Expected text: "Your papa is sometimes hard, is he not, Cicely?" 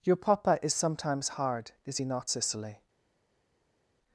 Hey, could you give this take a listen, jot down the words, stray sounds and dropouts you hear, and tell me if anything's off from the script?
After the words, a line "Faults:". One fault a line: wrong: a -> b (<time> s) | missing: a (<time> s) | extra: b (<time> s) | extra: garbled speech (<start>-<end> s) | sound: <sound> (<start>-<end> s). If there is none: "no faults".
"Your papa is sometimes hard, is he not, Cicely?"
Faults:
no faults